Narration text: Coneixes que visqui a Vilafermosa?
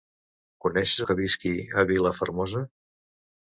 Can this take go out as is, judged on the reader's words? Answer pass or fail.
pass